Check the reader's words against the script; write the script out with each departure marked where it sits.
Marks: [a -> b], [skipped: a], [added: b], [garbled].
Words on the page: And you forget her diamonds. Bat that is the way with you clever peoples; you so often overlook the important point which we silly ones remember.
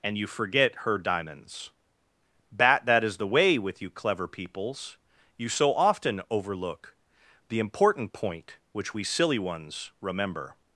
And you forget her diamonds. Bat that is the way with you clever peoples; you so often overlook the important point which we silly ones remember.